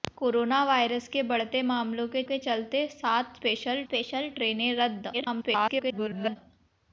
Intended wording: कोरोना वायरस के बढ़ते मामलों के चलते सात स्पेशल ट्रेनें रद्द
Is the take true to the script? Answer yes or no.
no